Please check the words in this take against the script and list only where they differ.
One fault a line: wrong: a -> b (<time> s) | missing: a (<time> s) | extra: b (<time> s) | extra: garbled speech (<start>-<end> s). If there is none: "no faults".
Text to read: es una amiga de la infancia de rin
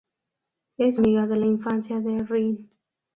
missing: una (1.0 s)